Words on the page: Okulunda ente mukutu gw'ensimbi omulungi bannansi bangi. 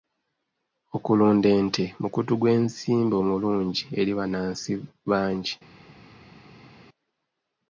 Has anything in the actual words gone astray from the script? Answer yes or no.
yes